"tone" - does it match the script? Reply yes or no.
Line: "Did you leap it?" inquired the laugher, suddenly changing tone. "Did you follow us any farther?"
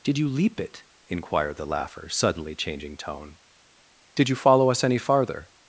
yes